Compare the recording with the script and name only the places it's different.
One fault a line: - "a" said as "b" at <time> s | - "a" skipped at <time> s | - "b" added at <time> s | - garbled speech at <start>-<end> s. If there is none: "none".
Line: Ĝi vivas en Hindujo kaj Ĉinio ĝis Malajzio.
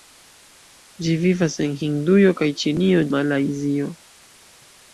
- "ĝis" skipped at 3.0 s